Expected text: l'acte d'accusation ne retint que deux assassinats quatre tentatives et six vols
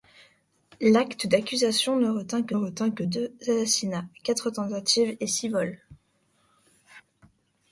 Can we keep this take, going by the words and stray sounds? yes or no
no